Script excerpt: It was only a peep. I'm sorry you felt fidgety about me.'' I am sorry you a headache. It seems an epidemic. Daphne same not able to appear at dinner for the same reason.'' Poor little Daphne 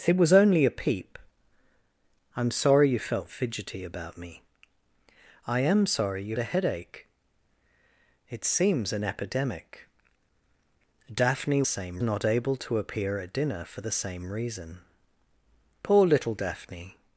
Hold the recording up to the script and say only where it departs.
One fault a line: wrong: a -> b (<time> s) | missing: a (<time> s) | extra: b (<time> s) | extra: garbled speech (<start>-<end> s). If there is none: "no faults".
no faults